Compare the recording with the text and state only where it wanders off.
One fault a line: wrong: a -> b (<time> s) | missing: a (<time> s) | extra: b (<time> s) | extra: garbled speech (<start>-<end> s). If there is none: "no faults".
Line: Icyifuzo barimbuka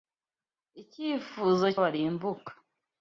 no faults